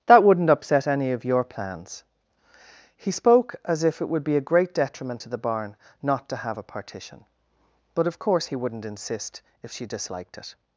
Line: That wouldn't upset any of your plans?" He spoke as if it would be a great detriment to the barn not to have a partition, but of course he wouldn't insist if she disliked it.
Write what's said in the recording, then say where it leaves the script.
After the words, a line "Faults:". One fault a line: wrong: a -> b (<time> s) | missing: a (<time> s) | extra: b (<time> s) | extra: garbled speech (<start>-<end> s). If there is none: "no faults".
That wouldn't upset any of your plans?" He spoke as if it would be a great detriment to the barn not to have a partition, but of course he wouldn't insist if she disliked it.
Faults:
no faults